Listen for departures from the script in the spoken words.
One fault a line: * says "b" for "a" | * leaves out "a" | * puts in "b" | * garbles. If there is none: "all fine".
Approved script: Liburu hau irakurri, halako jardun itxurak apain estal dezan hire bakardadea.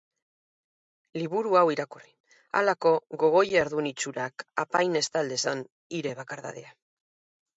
* puts in "gogo"